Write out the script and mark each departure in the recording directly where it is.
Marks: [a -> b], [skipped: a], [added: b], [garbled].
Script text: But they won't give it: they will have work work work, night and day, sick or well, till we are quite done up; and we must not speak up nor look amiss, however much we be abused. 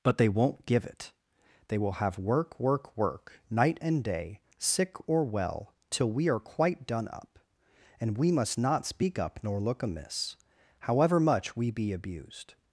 But they won't give it: they will have work work work, night and day, sick or well, till we are quite done up; and we must not speak up nor look amiss, however much we be abused.